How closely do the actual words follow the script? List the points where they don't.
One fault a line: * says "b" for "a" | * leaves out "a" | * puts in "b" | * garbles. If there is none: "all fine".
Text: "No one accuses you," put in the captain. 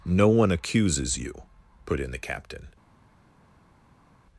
all fine